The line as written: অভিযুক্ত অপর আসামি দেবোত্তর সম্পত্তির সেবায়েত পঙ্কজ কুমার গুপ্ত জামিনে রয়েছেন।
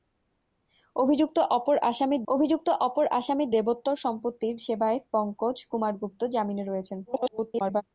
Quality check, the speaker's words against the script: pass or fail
fail